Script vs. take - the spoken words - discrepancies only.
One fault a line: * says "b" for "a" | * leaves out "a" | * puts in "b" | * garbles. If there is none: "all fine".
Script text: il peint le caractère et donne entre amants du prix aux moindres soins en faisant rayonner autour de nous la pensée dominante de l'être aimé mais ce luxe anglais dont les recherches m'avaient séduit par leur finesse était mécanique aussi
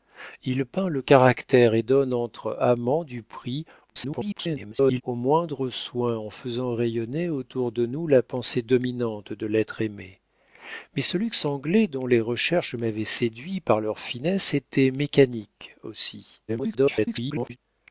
* garbles
* garbles